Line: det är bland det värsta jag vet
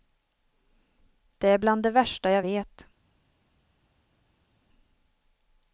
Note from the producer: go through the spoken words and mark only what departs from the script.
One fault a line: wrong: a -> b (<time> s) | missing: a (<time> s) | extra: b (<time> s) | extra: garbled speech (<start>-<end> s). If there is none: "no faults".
no faults